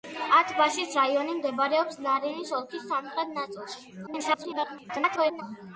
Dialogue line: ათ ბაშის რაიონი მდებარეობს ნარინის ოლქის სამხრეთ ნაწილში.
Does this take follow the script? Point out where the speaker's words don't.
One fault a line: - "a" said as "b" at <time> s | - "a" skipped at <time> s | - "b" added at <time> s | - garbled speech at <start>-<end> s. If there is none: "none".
- garbled speech at 4.1-5.4 s